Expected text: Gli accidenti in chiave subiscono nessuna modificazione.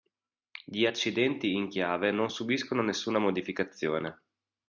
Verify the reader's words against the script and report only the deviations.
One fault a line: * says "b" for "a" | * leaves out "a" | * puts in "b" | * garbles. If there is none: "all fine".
* puts in "non"